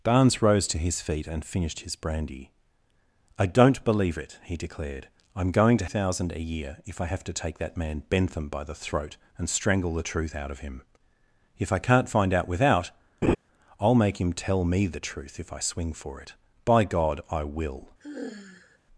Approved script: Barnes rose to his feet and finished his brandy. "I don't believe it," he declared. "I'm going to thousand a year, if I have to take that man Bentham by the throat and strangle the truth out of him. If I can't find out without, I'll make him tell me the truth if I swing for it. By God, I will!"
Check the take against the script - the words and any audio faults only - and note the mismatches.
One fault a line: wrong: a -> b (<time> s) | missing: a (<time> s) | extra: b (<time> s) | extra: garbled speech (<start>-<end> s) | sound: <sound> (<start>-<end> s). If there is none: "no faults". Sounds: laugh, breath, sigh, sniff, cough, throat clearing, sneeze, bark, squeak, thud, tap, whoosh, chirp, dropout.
sound: laugh (13.2-13.4 s)
sound: sigh (18.0-18.8 s)